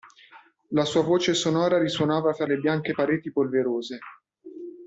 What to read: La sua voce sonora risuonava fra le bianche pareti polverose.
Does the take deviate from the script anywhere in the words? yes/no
no